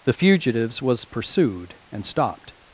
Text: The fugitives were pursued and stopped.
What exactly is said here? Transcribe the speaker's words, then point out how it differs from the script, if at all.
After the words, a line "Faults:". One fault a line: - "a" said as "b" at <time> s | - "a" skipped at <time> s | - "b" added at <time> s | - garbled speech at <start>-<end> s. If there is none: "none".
The fugitives was pursued and stopped.
Faults:
- "were" said as "was" at 0.8 s